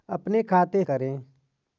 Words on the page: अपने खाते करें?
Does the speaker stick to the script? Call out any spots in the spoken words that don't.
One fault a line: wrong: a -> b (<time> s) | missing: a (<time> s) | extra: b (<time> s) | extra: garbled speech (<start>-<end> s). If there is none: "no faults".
no faults